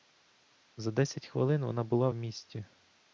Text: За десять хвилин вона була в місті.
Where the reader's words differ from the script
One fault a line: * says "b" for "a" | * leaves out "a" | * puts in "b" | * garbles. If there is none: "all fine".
all fine